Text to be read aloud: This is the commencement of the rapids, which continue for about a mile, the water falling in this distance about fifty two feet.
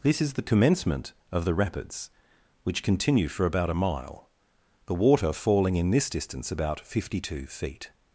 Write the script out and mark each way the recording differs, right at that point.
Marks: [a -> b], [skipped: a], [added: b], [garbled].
This is the commencement of the rapids, which continue for about a mile, the water falling in this distance about fifty two feet.